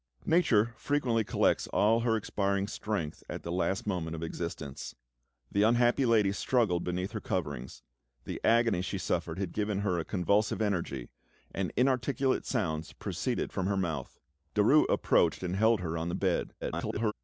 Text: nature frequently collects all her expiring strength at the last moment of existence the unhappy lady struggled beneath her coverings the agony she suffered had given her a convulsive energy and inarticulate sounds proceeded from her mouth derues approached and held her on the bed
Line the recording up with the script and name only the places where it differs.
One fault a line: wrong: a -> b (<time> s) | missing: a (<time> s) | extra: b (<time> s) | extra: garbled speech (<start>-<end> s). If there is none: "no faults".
extra: garbled speech (16.6-17.1 s)